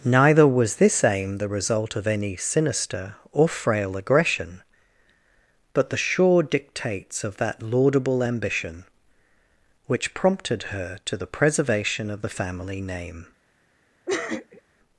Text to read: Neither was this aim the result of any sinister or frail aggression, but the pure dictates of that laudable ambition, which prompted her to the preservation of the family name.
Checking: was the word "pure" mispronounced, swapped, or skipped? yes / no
yes